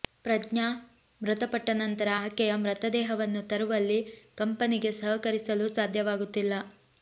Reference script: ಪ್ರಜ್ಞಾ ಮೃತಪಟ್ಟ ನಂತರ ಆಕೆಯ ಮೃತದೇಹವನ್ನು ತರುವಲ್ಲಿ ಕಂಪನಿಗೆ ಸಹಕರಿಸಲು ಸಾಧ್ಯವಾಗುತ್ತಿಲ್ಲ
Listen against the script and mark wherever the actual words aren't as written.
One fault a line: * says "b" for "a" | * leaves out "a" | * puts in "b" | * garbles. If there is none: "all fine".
all fine